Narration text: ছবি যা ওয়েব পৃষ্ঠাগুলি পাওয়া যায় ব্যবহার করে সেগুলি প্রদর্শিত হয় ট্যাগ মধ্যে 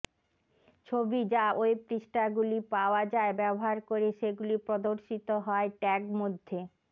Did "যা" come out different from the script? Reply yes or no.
no